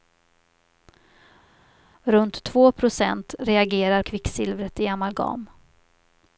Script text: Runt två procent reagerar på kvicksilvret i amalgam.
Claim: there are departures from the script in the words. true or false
true